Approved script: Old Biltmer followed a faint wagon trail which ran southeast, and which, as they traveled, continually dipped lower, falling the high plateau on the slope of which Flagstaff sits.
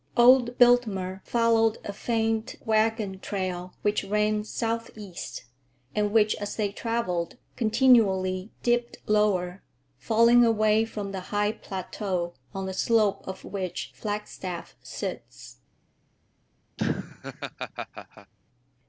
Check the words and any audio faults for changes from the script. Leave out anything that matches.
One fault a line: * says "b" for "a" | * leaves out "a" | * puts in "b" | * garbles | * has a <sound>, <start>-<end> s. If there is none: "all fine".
* puts in "away from"
* has a laugh, 16.8-18.3 s